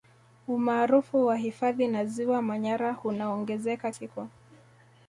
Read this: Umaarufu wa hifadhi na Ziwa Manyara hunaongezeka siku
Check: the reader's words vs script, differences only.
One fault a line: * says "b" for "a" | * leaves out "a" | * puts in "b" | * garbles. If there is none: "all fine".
all fine